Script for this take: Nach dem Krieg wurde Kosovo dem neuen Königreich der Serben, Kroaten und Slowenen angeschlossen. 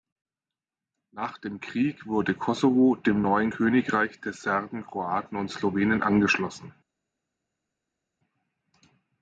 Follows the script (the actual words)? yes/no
yes